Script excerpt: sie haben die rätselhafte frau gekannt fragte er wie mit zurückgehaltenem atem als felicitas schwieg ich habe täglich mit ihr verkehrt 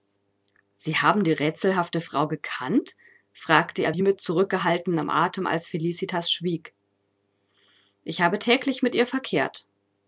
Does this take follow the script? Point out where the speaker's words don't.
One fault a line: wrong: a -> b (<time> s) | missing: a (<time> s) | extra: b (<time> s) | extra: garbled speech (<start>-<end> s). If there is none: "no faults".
no faults